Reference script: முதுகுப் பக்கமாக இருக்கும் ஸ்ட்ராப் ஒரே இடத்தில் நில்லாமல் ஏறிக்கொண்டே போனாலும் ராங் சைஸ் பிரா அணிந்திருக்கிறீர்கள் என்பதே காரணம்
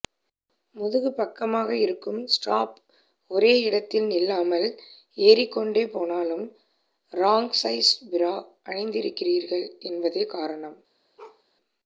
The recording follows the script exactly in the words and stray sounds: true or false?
false